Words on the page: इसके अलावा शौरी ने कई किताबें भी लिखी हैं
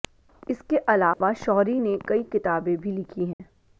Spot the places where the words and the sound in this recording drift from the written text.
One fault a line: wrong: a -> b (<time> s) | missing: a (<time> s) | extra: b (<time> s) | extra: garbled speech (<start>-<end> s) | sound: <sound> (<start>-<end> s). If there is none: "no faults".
sound: dropout (1.1-1.2 s)
sound: dropout (3.3-3.4 s)